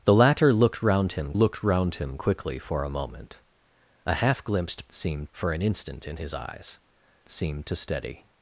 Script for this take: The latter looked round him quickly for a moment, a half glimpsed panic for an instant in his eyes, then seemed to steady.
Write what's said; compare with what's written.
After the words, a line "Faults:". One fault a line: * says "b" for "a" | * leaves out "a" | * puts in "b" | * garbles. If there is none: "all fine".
The latter looked round him looked round him quickly for a moment, a half glimpsed seemed for an instant in his eyes, seemed to steady.
Faults:
* puts in "looked round him"
* says "seemed" for "panic"
* leaves out "then"